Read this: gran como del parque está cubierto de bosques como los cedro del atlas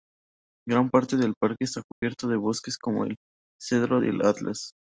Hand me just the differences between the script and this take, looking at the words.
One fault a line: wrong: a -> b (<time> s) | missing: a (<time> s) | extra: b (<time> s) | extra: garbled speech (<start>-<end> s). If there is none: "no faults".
wrong: como -> parte (0.9 s)
wrong: los -> el (3.0 s)